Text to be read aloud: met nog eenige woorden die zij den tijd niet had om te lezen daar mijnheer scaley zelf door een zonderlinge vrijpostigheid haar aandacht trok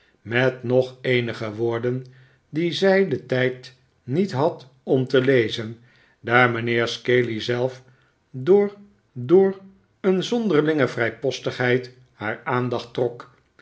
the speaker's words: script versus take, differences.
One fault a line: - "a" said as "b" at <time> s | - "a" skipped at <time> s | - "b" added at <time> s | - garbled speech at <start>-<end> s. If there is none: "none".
- "door" added at 9.1 s